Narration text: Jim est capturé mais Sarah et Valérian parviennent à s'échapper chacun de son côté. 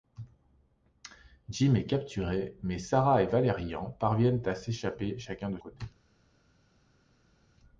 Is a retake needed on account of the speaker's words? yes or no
yes